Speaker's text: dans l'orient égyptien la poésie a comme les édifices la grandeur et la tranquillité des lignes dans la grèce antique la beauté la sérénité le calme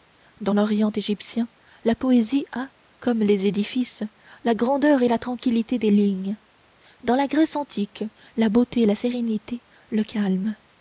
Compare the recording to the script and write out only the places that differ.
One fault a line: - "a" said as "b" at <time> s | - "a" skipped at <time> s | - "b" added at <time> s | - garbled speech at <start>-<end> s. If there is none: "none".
none